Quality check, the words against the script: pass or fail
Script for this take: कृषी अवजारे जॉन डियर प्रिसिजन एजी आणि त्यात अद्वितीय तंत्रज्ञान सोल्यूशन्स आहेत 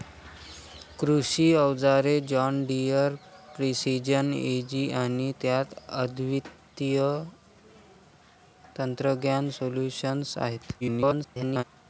fail